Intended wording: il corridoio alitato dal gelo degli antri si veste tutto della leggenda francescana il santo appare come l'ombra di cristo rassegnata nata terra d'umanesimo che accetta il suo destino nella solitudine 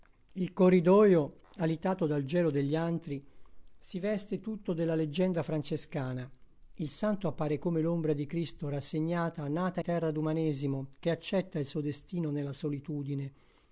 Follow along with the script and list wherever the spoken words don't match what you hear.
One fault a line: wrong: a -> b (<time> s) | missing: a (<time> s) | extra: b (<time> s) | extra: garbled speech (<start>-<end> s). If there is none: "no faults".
no faults